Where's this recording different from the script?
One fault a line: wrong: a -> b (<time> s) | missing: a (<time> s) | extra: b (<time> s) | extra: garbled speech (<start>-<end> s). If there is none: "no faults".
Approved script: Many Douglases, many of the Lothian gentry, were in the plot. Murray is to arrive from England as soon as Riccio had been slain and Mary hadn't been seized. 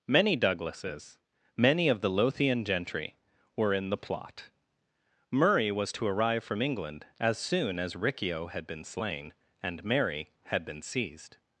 wrong: is -> was (5.7 s)
wrong: hadn't -> had (10.4 s)